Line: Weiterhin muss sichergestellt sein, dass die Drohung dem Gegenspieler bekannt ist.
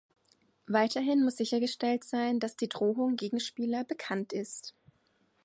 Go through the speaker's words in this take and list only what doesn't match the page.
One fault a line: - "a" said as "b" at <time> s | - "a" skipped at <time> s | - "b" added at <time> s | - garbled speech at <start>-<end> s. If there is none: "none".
- "dem" skipped at 3.2 s